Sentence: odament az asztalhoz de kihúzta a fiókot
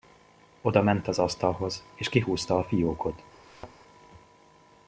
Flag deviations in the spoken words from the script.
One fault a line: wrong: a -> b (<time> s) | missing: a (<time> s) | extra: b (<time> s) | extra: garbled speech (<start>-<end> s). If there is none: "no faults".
wrong: de -> és (1.9 s)